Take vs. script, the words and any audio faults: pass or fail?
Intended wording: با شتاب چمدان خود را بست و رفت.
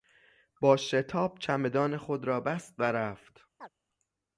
fail